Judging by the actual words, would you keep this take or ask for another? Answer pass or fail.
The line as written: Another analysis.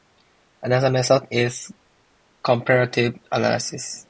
fail